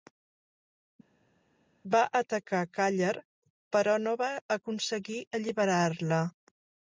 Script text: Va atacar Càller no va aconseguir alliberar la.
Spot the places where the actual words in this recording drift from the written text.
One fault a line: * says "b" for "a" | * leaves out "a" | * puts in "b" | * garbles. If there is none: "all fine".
* puts in "però"